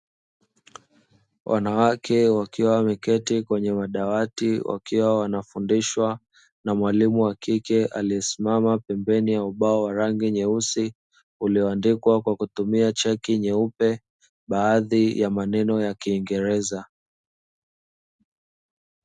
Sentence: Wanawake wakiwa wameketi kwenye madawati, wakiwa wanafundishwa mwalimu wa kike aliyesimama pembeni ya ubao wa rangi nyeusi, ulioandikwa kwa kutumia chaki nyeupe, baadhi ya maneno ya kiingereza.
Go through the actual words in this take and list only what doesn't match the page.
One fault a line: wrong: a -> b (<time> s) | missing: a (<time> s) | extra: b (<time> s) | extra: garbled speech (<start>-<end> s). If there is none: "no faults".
extra: na (6.6 s)